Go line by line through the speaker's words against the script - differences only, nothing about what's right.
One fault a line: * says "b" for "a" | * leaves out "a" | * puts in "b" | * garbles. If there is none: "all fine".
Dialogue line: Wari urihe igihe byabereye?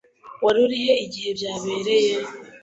all fine